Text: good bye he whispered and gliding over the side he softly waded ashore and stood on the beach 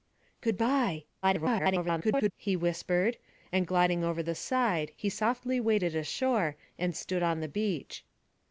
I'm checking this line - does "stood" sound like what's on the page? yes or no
yes